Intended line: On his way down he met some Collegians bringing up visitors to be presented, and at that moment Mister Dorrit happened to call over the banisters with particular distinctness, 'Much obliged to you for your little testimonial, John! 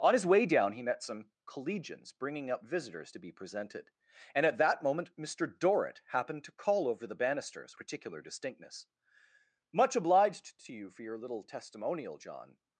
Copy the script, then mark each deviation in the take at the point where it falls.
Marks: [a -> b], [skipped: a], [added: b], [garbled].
On his way down he met some Collegians bringing up visitors to be presented, and at that moment Mister Dorrit happened to call over the banisters [skipped: with] particular distinctness, 'Much obliged to you for your little testimonial, John!